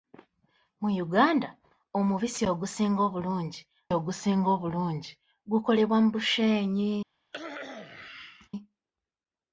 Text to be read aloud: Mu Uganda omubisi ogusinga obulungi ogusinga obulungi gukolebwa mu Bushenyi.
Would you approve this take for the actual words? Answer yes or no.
yes